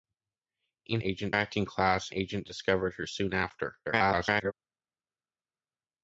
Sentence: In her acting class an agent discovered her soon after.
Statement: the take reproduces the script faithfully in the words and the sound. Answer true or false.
false